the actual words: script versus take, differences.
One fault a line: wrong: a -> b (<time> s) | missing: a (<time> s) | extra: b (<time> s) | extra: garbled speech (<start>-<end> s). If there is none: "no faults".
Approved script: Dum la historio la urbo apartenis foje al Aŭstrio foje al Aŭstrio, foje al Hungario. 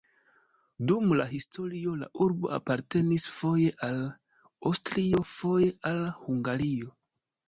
missing: Aŭstrio foje al (6.0 s)